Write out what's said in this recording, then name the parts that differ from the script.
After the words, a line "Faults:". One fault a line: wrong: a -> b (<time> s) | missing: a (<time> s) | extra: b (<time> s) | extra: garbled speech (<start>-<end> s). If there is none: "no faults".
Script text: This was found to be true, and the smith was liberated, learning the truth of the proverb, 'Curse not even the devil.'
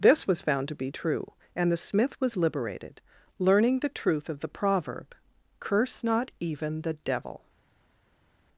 This was found to be true, and the smith was liberated, learning the truth of the proverb, 'Curse not even the devil.'
Faults:
no faults